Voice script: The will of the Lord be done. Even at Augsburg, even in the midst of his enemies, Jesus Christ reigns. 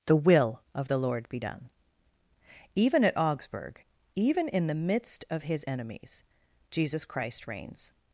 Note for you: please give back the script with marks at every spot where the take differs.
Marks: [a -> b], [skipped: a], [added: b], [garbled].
The will of the Lord be done. Even at Augsburg, even in the midst of his enemies, Jesus Christ reigns.